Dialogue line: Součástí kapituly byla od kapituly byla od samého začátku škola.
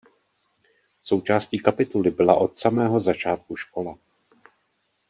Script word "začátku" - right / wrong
right